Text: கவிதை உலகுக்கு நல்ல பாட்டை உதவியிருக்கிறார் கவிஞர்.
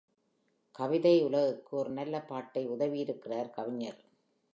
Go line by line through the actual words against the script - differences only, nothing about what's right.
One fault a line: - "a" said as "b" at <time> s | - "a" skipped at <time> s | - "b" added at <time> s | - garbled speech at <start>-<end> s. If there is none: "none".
- "ஒரு" added at 1.8 s